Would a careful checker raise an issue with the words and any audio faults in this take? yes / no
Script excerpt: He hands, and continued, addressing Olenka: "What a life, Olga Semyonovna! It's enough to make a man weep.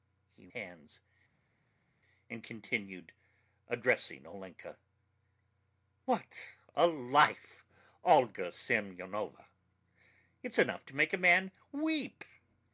no